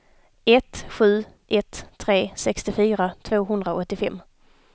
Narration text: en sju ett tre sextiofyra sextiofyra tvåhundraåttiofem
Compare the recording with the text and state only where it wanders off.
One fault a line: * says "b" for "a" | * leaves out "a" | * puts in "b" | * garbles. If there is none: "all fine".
* says "ett" for "en"
* leaves out "sextiofyra"